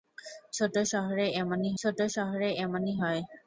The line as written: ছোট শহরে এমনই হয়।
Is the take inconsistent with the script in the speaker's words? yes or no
yes